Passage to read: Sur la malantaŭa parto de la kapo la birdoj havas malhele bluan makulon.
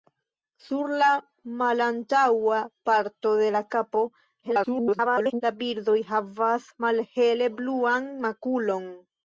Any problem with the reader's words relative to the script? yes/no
yes